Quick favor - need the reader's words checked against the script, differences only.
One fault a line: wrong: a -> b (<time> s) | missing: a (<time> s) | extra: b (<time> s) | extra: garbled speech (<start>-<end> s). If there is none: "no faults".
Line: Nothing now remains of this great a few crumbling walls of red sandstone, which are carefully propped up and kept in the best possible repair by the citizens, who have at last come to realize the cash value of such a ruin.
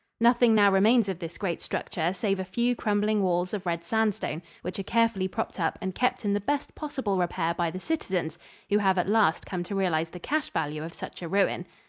extra: structure save (1.6 s)